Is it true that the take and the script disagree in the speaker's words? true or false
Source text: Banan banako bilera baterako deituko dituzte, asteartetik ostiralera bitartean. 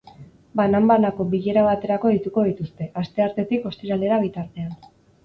false